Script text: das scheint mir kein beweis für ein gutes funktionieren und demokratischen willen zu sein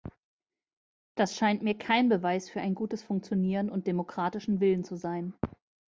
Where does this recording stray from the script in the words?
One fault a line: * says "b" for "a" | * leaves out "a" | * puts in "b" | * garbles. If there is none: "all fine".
all fine